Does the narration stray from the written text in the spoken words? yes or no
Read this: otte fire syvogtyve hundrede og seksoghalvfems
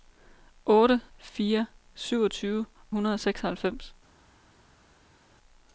no